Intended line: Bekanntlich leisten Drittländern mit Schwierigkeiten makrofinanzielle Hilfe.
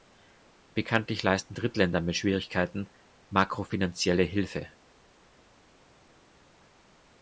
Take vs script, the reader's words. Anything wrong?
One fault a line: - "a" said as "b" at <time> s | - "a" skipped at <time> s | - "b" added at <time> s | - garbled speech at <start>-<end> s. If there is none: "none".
none